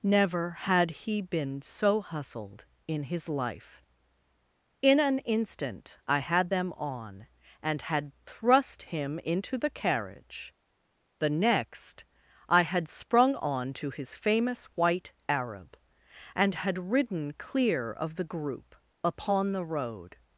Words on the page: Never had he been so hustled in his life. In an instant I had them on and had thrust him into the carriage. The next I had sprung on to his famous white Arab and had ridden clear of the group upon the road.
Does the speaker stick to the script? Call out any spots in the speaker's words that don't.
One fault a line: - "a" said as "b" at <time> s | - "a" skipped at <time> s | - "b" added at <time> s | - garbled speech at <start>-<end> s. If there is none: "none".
none